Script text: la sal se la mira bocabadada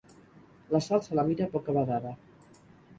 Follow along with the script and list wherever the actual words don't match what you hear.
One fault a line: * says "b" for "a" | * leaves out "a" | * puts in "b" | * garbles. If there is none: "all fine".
all fine